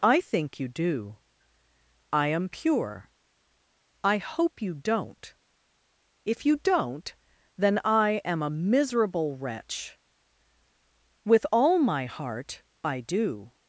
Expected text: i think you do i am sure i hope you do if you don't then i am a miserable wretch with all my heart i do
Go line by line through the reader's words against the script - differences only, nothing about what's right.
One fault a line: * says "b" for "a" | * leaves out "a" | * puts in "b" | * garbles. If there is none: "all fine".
* says "pure" for "sure"
* says "don't" for "do"